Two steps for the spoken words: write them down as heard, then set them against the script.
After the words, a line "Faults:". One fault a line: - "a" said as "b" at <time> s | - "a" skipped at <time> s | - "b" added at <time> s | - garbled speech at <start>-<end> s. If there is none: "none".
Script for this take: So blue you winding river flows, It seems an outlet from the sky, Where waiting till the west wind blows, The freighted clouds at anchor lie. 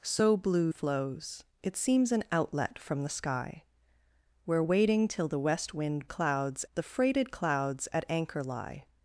So blue flows, It seems an outlet from the sky, Where waiting till the west wind clouds, The freighted clouds at anchor lie.
Faults:
- "you winding river" skipped at 0.7 s
- "blows" said as "clouds" at 6.1 s